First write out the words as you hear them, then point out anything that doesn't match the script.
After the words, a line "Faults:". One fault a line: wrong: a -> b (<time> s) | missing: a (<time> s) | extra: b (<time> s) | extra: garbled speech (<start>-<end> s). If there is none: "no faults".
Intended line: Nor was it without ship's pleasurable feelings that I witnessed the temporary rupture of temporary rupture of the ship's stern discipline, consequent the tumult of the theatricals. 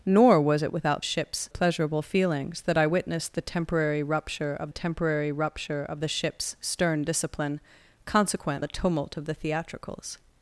Nor was it without ship's pleasurable feelings that I witnessed the temporary rupture of temporary rupture of the ship's stern discipline, consequent the tumult of the theatricals.
Faults:
no faults